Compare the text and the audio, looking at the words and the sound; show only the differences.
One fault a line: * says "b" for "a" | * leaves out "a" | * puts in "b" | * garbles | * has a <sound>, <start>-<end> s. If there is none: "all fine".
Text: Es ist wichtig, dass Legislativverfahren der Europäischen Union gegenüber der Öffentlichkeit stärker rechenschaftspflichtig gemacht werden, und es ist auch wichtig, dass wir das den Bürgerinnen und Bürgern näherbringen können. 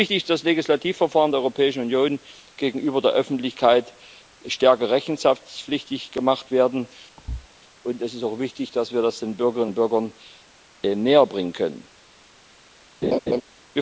* has a thud, 7.2-7.5 s
* has a laugh, 13.0-13.4 s